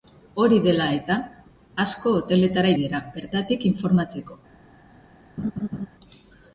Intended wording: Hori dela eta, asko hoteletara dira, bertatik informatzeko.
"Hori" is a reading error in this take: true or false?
false